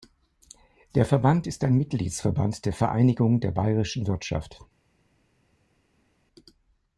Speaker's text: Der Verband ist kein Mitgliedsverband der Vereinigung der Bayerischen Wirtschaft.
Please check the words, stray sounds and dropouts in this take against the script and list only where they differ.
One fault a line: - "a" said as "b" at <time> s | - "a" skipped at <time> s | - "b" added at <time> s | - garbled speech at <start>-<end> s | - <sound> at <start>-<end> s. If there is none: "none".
- "kein" said as "ein" at 1.6 s